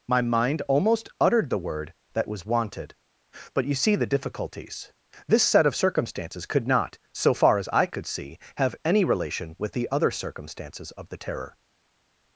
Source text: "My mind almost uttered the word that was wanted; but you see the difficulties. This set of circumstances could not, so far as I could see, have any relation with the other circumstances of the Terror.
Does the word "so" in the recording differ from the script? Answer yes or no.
no